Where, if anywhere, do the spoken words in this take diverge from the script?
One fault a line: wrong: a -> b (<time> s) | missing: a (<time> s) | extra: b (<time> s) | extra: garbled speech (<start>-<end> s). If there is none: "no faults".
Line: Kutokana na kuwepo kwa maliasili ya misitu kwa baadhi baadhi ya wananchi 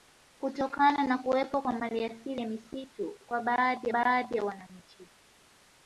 no faults